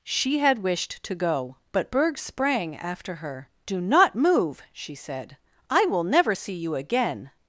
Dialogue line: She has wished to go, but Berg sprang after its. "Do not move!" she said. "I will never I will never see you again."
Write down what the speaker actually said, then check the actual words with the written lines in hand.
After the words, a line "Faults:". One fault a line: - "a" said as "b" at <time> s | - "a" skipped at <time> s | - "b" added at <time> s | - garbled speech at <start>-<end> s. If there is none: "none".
She had wished to go, but Berg sprang after her. "Do not move!" she said. "I will never see you again."
Faults:
- "has" said as "had" at 0.4 s
- "its" said as "her" at 3.1 s
- "I will never" skipped at 6.3 s